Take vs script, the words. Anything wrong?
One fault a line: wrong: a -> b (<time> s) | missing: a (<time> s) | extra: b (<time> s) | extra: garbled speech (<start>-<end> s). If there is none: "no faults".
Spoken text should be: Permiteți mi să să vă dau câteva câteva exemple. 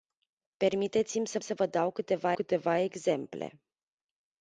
no faults